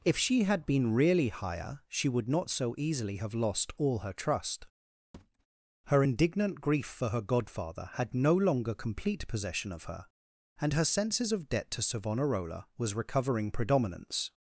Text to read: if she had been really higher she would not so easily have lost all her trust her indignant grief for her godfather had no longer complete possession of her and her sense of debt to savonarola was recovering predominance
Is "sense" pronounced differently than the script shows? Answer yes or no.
yes